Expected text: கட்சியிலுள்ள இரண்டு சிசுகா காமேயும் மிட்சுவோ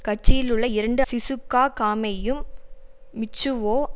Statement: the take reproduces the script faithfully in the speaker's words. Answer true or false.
true